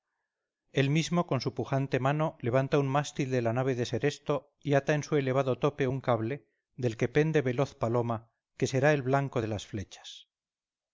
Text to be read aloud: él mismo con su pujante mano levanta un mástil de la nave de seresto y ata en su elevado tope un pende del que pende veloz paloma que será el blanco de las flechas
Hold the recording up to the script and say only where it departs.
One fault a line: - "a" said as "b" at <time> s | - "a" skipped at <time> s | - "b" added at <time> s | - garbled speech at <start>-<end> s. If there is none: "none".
- "pende" said as "cable" at 6.0 s